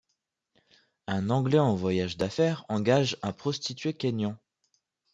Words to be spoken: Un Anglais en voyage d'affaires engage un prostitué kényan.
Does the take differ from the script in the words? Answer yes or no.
no